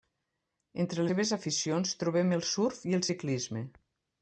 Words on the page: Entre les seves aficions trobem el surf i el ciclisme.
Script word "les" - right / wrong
wrong